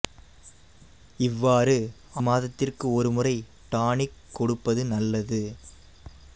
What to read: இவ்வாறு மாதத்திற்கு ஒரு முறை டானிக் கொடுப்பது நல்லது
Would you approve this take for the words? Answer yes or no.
yes